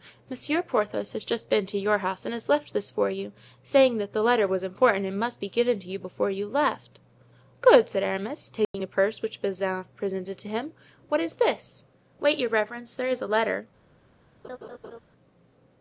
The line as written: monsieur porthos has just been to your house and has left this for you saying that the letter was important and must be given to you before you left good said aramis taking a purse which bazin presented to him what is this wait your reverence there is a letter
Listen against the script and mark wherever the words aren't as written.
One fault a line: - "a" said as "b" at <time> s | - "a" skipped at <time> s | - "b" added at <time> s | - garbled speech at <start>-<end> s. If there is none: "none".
none